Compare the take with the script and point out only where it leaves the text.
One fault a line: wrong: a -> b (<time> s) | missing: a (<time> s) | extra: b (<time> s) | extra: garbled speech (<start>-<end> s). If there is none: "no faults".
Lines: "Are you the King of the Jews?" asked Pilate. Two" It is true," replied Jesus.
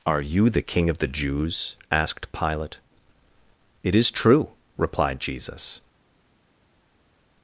missing: Two (2.8 s)